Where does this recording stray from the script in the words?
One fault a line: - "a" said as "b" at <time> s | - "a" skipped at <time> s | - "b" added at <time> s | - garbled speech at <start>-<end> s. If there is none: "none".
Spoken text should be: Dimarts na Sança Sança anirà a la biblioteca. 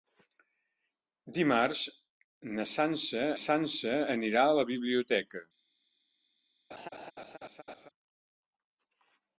none